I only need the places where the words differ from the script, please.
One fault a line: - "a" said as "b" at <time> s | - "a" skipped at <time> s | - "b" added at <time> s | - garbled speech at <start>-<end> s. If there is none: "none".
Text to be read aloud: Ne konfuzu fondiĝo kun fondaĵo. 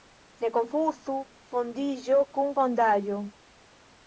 none